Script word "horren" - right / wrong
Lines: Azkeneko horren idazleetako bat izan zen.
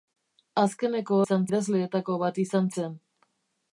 wrong